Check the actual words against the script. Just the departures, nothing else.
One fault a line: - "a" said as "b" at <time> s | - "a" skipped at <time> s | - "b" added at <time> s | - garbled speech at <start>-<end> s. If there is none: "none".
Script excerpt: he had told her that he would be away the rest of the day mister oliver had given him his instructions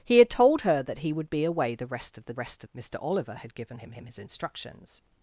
- "day" said as "rest" at 2.3 s
- "him" added at 3.9 s